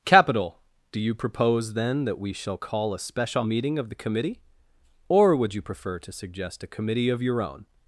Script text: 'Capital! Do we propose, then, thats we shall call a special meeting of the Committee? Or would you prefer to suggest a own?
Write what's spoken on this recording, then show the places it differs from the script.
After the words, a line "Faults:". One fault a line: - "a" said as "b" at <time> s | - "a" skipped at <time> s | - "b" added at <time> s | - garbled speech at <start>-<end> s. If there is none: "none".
'Capital! Do you propose, then, that we shall call a special meeting of the Committee? Or would you prefer to suggest a committee of your own?
Faults:
- "we" said as "you" at 1.0 s
- "thats" said as "that" at 2.0 s
- "committee of your" added at 6.7 s